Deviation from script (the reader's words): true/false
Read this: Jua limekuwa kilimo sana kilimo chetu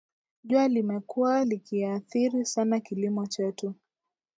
true